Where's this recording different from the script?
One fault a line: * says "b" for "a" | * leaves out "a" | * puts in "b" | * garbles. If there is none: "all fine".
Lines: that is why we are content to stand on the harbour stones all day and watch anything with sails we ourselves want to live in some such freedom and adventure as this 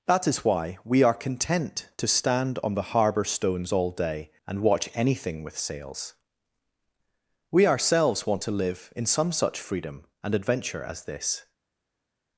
all fine